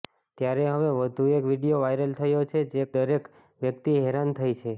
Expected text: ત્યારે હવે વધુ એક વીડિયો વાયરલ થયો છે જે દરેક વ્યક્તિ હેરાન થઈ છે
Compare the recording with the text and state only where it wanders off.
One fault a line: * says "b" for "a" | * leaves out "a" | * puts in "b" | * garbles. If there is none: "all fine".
all fine